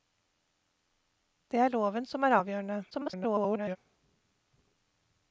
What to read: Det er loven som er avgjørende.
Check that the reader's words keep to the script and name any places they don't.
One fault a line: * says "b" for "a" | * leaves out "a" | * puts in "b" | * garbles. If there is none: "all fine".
* garbles